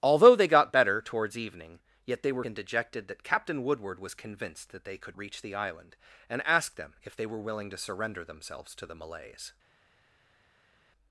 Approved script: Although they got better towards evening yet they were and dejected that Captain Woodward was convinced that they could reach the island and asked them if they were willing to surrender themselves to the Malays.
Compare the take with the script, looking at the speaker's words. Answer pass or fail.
pass